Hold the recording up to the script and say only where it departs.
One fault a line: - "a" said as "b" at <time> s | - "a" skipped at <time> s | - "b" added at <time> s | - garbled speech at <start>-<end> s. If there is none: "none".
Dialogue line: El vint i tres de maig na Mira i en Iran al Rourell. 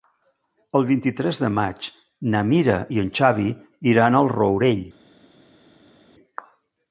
- "Xavi" added at 3.2 s